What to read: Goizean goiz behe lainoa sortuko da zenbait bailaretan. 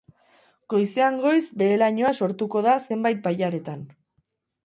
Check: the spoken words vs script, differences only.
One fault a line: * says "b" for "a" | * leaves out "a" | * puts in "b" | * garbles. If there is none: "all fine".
all fine